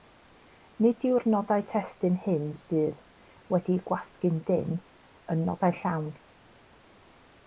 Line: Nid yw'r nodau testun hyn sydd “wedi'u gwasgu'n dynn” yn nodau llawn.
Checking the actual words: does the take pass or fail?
pass